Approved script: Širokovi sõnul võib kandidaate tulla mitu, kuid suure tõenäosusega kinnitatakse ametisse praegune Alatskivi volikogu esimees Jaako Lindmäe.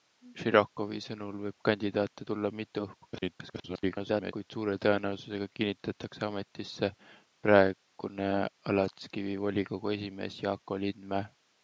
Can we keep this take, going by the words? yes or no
no